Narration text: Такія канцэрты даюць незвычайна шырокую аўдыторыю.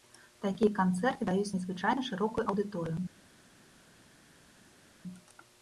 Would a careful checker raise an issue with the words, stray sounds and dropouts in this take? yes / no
no